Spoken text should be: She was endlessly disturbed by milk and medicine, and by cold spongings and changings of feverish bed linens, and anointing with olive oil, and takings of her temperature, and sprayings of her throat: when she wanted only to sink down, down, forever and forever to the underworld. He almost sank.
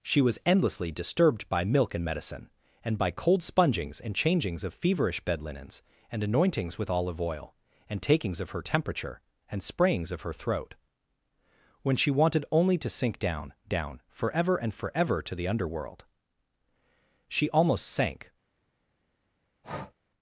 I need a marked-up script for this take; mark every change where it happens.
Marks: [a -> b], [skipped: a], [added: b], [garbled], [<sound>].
She was endlessly disturbed by milk and medicine, and by cold spongings and changings of feverish bed linens, and [anointing -> anointings] with olive oil, and takings of her temperature, and sprayings of her throat: when she wanted only to sink down, down, forever and forever to the underworld. [He -> She] almost sank. [breath]